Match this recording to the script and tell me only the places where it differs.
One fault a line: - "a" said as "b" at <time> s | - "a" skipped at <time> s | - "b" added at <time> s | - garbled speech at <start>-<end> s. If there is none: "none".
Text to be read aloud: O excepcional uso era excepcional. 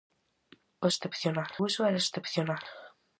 none